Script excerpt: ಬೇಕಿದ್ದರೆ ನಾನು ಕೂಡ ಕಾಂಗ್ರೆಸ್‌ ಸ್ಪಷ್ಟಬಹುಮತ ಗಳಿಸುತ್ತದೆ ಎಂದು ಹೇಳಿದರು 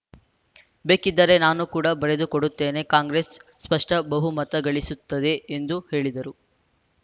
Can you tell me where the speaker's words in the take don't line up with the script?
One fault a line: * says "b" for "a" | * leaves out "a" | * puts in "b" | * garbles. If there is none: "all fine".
* puts in "ಬರೆದುಕೊಡುತ್ತೇನೆ"